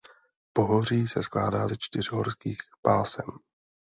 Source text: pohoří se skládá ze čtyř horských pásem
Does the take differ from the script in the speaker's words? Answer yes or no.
no